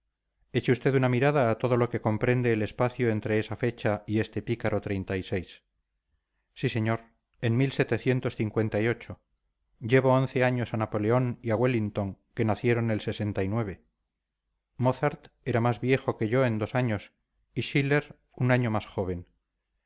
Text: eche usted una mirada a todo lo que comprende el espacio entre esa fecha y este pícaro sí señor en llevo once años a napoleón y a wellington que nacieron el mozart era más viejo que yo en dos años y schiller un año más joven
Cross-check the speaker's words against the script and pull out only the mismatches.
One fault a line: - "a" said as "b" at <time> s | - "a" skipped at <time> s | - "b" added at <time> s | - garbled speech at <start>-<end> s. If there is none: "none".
none